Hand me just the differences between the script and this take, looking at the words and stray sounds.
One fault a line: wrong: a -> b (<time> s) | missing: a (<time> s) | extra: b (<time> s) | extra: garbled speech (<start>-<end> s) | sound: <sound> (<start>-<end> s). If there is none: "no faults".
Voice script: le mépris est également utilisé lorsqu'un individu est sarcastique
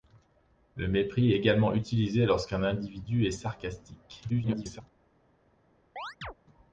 missing: est (1.3 s)
extra: garbled speech (4.3-4.8 s)
sound: chirp (6.0-6.3 s)